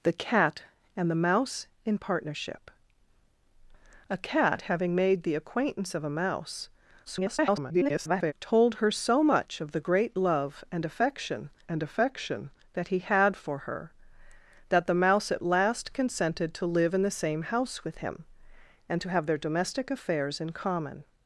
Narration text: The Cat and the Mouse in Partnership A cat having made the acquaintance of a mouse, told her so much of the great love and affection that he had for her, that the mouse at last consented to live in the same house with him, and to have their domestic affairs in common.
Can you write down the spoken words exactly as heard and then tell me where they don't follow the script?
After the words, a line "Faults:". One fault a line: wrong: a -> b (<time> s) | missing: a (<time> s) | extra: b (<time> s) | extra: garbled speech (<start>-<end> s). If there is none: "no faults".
The Cat and the Mouse in Partnership A cat having made the acquaintance of a mouse, [garbled] told her so much of the great love and affection and affection that he had for her, that the mouse at last consented to live in the same house with him, and to have their domestic affairs in common.
Faults:
extra: garbled speech (7.1-8.3 s)
extra: and affection (11.7 s)